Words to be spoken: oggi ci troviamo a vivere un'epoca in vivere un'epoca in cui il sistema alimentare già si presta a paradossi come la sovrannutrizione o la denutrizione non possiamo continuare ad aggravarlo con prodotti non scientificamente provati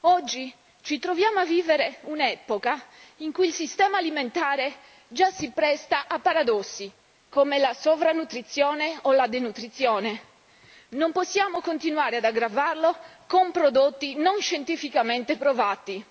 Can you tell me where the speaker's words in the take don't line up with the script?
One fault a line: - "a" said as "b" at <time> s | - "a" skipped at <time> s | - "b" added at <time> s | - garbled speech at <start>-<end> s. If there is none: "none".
- "vivere un'epoca in" skipped at 3.3 s